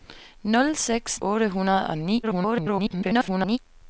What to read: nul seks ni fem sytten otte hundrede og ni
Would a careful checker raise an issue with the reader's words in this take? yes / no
yes